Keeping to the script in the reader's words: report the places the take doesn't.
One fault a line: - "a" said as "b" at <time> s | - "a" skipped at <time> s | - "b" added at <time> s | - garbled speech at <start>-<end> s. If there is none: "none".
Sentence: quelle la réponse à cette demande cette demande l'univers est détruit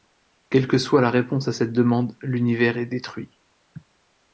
- "que soit" added at 0.7 s
- "cette demande" skipped at 2.2 s